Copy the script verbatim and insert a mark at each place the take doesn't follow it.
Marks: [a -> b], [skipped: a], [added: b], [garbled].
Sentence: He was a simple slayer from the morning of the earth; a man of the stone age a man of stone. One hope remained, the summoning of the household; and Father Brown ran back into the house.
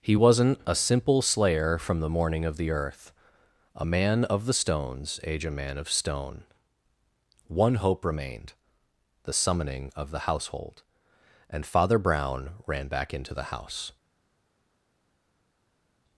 He [was -> wasn't] a simple slayer from the morning of the earth; a man of the [stone -> stones] age a man of stone. One hope remained, the summoning of the household; and Father Brown ran back into the house.